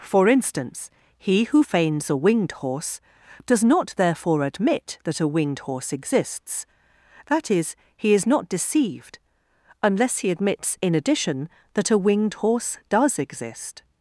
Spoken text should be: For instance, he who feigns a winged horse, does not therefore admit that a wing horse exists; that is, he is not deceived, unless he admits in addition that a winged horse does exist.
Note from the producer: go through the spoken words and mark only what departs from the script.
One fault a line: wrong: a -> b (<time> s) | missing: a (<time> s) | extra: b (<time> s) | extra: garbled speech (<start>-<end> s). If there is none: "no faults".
wrong: wing -> winged (5.3 s)